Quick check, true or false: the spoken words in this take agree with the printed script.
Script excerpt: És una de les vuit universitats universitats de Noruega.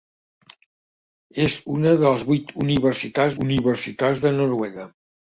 true